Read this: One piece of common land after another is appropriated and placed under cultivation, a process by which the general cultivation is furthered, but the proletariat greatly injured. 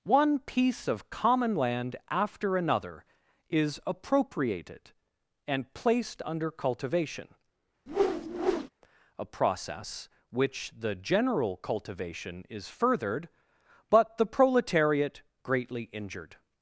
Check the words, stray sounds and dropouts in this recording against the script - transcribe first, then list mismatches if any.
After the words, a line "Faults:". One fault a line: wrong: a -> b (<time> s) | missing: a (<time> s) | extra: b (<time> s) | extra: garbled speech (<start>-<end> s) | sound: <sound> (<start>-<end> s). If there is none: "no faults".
One piece of common land after another is appropriated and placed under cultivation, a process which the general cultivation is furthered, but the proletariat greatly injured.
Faults:
sound: whoosh (7.9-8.7 s)
missing: by (10.1 s)